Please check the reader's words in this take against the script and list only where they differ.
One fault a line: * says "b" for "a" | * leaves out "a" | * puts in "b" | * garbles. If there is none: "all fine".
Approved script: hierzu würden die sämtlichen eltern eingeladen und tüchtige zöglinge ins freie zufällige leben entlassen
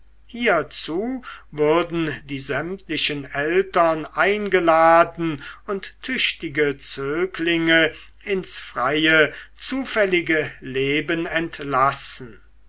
all fine